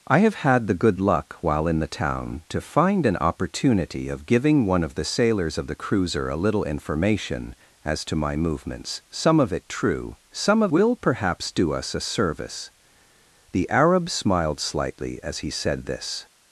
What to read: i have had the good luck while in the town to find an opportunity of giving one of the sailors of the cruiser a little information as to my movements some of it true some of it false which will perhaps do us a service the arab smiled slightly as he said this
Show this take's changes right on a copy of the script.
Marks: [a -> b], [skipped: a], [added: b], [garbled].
i have had the good luck while in the town to find an opportunity of giving one of the sailors of the cruiser a little information as to my movements some of it true some of [skipped: it false which] will perhaps do us a service the arab smiled slightly as he said this